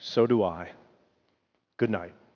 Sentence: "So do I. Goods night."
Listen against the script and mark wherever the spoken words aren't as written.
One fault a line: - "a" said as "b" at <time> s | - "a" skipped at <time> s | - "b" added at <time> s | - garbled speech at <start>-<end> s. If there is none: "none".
- "Goods" said as "Good" at 1.8 s